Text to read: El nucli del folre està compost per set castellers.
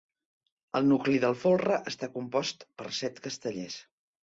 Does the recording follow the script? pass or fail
pass